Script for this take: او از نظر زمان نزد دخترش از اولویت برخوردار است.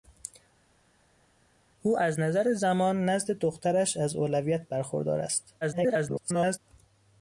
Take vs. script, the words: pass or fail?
fail